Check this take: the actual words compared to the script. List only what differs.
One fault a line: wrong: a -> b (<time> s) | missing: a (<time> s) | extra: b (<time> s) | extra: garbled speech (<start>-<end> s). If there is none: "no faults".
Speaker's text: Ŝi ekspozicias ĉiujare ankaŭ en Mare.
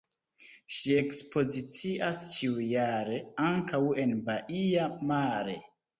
extra: Baia (4.3 s)